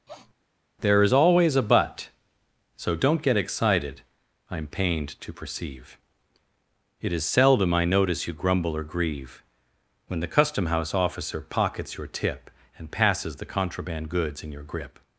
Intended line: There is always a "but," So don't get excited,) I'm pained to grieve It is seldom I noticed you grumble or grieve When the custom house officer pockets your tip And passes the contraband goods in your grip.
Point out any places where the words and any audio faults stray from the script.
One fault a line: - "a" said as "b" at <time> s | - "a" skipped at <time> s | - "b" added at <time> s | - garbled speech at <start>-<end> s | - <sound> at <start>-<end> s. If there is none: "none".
- sniff at 0.1-0.3 s
- "grieve" said as "perceive" at 5.3 s
- "noticed" said as "notice" at 7.8 s